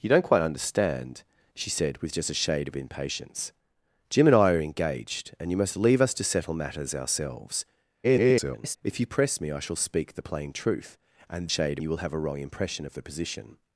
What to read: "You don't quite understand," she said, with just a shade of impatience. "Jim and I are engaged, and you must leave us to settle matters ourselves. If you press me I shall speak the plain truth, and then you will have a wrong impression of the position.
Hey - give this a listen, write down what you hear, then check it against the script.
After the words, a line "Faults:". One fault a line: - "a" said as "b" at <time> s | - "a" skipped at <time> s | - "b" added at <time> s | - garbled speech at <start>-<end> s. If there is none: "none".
"You don't quite understand," she said, with just a shade of impatience. "Jim and I are engaged, and you must leave us to settle matters ourselves. [garbled] If you press me I shall speak the plain truth, and shade you will have a wrong impression of the position.
Faults:
- garbled speech at 8.0-8.8 s
- "then" said as "shade" at 11.5 s